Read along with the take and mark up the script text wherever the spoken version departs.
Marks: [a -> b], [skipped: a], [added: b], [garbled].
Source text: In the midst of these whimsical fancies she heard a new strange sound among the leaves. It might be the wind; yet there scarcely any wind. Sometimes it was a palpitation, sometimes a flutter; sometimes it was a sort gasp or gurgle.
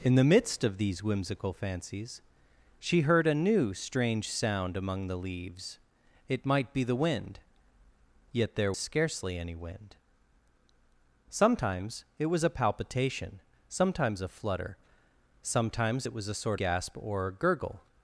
In the midst of these whimsical fancies she heard a new strange sound among the leaves. It might be the wind; yet there scarcely any wind. Sometimes it was a palpitation, sometimes a flutter; sometimes it was a sort gasp or gurgle.